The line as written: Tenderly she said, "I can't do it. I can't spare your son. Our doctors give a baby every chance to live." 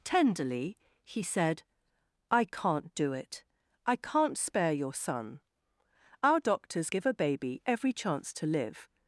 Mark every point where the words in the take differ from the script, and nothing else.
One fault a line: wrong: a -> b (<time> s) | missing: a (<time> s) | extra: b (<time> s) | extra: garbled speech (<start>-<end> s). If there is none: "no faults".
wrong: she -> he (1.0 s)